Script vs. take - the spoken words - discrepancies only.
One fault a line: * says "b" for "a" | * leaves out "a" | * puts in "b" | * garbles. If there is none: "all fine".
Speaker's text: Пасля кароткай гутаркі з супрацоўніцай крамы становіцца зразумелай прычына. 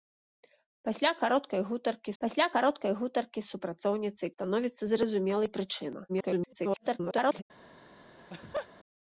* puts in "пасля кароткай гутаркі"
* leaves out "крамы"
* garbles